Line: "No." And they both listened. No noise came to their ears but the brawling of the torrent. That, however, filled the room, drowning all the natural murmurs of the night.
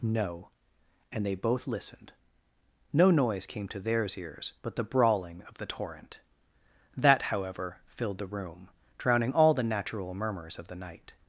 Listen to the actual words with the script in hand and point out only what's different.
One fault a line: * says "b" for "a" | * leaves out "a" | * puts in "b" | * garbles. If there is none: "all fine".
* says "theirs" for "their"